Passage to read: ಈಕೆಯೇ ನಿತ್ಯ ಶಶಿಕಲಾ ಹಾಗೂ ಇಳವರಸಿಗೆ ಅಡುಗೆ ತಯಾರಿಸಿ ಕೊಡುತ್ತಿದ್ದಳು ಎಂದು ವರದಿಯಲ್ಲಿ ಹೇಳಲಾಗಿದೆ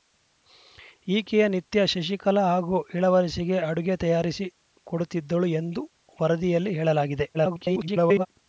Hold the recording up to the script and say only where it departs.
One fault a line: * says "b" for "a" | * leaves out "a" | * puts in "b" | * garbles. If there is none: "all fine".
* garbles